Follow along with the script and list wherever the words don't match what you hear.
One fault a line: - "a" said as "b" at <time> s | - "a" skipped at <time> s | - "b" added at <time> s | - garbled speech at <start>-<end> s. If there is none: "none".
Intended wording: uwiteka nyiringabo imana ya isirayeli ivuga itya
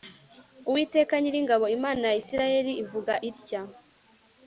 none